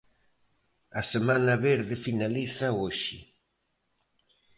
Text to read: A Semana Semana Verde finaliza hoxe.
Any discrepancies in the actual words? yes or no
yes